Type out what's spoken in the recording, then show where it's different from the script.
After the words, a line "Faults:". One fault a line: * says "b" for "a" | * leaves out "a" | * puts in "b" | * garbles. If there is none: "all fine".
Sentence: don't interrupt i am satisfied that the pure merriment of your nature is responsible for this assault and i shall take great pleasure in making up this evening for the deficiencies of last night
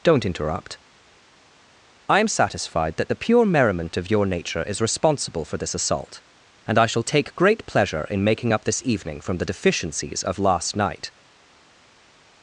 don't interrupt i am satisfied that the pure merriment of your nature is responsible for this assault and i shall take great pleasure in making up this evening from the deficiencies of last night
Faults:
* says "from" for "for"